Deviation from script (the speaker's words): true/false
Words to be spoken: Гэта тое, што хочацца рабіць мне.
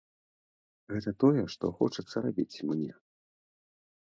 false